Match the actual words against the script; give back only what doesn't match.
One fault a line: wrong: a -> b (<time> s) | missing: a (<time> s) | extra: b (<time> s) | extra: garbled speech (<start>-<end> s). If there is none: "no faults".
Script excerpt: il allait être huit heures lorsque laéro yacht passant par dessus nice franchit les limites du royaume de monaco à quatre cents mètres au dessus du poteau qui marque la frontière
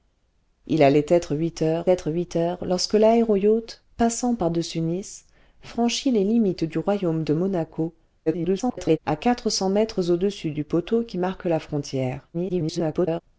extra: être huit heures (1.9 s)
extra: garbled speech (8.3-9.0 s)
extra: garbled speech (12.3-13.2 s)